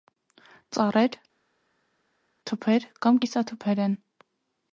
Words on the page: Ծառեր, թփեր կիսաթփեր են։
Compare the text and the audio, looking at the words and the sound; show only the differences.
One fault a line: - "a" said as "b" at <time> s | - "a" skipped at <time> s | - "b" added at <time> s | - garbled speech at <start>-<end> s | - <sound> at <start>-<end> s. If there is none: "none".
- "կամ" added at 3.1 s